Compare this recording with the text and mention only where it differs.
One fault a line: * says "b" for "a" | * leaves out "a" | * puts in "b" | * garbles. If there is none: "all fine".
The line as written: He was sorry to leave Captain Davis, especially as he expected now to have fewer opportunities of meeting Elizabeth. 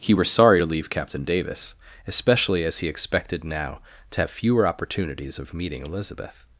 * says "were" for "was"